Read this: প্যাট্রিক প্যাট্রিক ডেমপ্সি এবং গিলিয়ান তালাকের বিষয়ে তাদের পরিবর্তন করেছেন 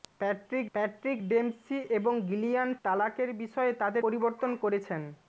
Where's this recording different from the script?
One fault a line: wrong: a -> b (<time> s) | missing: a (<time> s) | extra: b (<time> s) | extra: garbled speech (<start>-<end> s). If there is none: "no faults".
no faults